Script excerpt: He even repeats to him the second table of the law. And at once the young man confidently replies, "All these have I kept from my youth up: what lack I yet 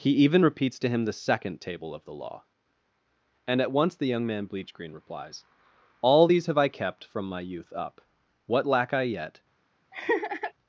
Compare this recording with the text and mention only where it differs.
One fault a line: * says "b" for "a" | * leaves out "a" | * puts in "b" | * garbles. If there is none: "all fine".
* says "bleachgreen" for "confidently"